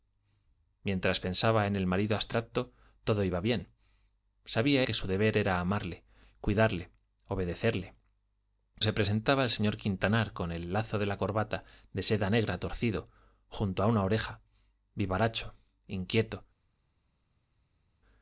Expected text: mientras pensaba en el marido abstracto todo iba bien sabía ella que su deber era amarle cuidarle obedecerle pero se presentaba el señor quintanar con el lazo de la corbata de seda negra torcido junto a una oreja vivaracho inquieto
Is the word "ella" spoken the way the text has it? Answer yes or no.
no